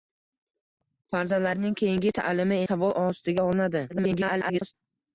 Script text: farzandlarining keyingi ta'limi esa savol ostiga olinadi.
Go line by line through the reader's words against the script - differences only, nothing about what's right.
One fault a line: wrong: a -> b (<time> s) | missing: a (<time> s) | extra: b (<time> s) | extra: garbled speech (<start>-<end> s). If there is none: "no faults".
missing: esa (2.6 s)
extra: garbled speech (3.9-4.7 s)